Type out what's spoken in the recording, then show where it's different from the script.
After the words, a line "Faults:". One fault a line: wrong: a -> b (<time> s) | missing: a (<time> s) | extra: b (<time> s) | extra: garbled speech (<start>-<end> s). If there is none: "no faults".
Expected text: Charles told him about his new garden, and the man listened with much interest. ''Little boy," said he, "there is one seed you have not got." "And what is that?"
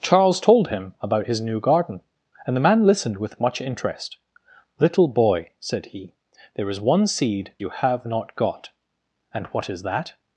Charles told him about his new garden, and the man listened with much interest. ''Little boy," said he, "there is one seed you have not got." "And what is that?"
Faults:
no faults